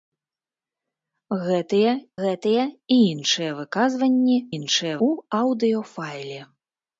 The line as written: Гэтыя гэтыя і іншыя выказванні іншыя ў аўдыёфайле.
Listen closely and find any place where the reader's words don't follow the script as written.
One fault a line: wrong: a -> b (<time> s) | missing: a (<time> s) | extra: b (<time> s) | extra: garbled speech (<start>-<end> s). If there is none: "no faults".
no faults